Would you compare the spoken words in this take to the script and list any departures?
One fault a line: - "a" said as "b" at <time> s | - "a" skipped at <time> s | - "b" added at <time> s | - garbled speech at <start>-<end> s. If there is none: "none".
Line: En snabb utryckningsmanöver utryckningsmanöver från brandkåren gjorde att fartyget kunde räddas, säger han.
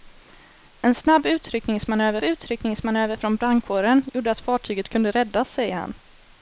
none